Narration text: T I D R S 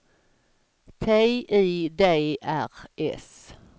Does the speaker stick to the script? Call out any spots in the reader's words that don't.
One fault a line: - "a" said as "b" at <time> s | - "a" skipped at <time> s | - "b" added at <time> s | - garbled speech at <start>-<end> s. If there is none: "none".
none